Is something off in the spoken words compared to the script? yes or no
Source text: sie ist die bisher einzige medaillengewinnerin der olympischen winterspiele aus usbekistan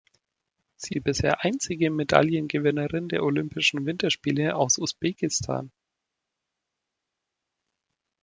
yes